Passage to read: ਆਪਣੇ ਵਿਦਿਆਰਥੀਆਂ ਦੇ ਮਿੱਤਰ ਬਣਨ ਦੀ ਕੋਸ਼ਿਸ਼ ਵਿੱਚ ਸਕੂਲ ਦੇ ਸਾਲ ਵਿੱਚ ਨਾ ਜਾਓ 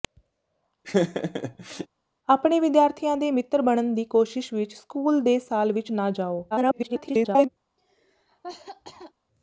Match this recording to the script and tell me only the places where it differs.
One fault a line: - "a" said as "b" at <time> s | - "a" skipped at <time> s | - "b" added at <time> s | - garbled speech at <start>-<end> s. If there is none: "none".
- garbled speech at 6.5-7.5 s